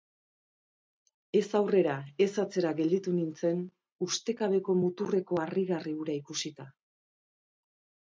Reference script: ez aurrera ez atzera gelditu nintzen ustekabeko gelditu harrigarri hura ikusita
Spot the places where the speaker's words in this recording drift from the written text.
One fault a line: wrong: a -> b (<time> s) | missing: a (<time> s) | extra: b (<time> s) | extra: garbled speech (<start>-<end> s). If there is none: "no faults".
wrong: gelditu -> muturreko (4.8 s)